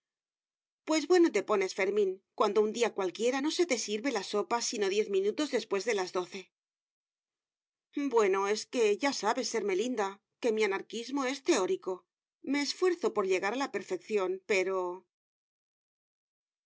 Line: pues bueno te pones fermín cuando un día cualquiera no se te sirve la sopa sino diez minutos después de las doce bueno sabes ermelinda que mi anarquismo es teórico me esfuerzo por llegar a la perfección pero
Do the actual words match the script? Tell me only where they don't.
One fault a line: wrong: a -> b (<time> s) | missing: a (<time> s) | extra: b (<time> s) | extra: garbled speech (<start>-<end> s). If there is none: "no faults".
extra: es que ya (8.5 s)